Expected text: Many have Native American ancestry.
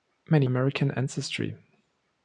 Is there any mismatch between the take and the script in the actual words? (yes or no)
yes